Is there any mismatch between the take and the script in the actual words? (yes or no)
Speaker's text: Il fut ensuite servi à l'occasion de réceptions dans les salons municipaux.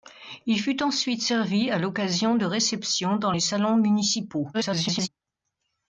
yes